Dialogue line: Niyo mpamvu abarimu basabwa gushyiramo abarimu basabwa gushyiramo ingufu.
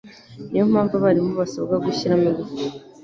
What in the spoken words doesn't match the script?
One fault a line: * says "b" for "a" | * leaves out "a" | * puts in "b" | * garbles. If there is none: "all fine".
* leaves out "abarimu basabwa gushyiramo"